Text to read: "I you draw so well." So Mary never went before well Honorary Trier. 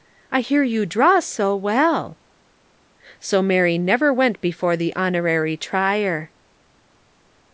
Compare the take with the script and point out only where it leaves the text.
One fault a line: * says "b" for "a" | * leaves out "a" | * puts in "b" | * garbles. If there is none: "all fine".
* puts in "hear"
* says "the" for "well"